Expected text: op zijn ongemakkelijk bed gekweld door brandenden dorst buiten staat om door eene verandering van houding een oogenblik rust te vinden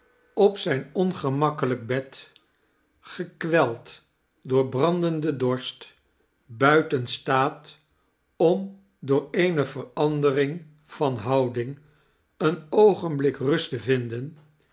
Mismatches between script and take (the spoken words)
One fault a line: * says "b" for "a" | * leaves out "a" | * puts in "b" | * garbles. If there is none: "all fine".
all fine